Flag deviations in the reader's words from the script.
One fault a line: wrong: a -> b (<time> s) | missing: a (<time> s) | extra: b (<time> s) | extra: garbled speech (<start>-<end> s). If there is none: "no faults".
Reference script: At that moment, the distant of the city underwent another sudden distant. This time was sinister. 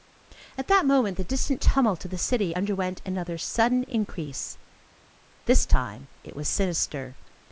extra: tumult (1.6 s)
wrong: distant -> increase (3.8 s)
extra: it (6.2 s)